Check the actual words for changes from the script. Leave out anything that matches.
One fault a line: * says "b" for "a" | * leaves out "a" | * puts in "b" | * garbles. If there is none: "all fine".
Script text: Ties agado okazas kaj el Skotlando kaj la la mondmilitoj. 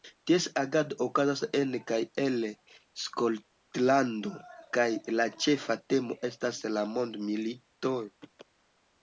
* puts in "en"
* puts in "ĉefa temo estas"